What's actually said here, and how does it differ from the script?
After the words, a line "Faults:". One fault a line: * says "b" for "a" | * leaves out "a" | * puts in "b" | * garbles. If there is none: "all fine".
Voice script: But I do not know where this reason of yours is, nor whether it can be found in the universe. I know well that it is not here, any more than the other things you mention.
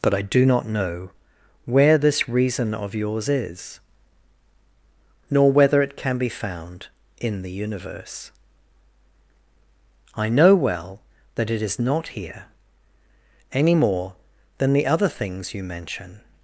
But I do not know where this reason of yours is, nor whether it can be found in the universe. I know well that it is not here, any more than the other things you mention.
Faults:
all fine